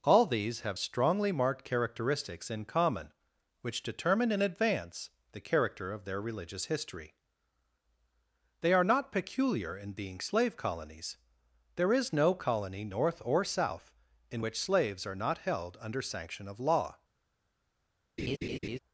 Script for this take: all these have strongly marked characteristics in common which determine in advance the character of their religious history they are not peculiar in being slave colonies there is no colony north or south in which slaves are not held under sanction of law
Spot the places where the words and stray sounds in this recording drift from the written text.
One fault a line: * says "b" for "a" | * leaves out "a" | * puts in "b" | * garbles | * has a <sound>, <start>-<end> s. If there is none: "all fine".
* has a laugh, 18.2-18.8 s